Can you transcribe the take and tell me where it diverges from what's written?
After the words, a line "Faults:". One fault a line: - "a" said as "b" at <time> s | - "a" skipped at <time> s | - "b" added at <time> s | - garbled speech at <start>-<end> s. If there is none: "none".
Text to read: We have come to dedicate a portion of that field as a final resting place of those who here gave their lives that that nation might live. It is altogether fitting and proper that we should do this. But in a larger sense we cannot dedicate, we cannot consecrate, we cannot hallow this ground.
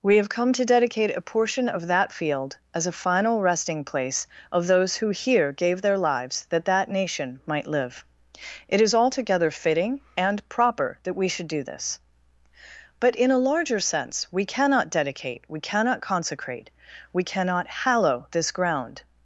We have come to dedicate a portion of that field as a final resting place of those who here gave their lives that that nation might live. It is altogether fitting and proper that we should do this. But in a larger sense we cannot dedicate, we cannot consecrate, we cannot hallow this ground.
Faults:
none